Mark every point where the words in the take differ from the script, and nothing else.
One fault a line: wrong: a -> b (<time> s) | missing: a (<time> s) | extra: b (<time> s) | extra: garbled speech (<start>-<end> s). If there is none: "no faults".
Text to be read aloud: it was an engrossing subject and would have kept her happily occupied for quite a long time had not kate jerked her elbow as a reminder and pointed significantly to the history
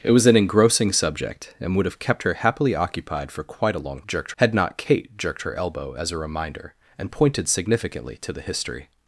wrong: time -> jerked (4.1 s)